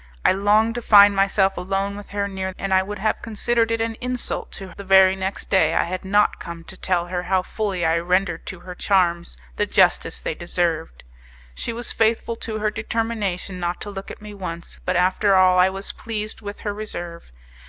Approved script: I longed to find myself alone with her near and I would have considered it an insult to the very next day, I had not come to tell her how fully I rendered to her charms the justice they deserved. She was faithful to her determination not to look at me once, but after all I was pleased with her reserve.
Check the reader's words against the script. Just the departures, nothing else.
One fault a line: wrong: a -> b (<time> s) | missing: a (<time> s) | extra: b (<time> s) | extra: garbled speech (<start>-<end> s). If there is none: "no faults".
no faults